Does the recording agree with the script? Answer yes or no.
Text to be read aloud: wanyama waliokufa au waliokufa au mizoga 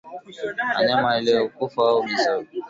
no